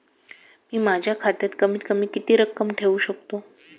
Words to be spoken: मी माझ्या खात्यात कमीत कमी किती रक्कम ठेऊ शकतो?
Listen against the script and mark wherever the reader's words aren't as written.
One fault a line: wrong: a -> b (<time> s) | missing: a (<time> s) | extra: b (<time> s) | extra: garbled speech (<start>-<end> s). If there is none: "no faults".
no faults